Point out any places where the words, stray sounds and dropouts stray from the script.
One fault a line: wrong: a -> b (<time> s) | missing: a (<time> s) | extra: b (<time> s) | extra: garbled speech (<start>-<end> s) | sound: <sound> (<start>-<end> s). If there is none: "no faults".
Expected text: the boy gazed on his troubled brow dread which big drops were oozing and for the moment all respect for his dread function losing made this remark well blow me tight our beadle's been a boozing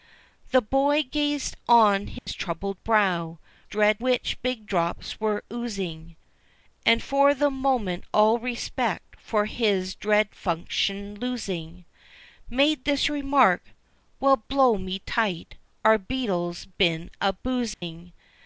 sound: dropout (2.2-2.3 s)
sound: dropout (17.7-17.8 s)